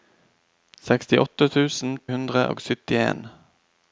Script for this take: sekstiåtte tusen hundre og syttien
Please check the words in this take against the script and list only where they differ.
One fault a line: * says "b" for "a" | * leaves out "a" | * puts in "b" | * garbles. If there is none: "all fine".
all fine